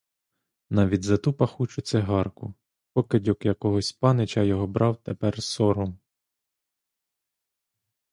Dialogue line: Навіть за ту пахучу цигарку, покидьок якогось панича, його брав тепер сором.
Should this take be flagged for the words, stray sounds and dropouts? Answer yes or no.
no